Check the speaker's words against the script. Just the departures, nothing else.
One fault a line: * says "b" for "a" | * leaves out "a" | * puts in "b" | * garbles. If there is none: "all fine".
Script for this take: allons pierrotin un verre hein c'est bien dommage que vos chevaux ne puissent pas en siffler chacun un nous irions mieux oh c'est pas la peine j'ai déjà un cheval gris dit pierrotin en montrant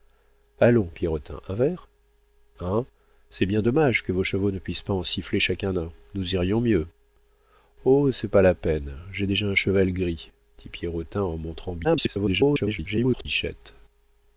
* garbles